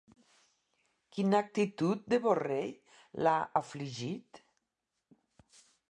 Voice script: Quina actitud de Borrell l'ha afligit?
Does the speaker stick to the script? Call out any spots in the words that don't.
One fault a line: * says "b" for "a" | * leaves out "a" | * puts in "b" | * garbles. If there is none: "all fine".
all fine